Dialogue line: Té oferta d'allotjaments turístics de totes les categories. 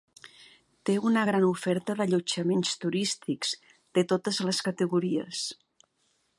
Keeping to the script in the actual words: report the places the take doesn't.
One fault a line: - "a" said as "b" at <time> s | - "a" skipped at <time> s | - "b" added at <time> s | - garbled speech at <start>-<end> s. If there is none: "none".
- "una gran" added at 1.1 s